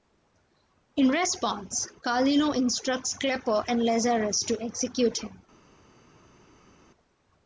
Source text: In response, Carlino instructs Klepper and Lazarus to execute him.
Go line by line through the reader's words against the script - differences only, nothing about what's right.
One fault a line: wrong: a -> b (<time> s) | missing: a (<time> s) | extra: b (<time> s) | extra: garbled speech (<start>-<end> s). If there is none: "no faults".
no faults